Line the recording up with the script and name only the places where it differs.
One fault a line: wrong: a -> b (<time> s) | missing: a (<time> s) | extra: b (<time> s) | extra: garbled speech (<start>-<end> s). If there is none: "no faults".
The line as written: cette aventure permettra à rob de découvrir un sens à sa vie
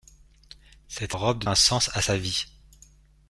missing: aventure permettra (1.1 s)
missing: découvrir (1.5 s)